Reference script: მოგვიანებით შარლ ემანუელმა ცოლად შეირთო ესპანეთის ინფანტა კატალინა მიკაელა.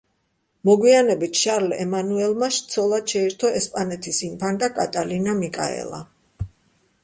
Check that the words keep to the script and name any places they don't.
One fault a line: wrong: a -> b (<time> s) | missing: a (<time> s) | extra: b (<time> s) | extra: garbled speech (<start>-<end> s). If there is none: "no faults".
no faults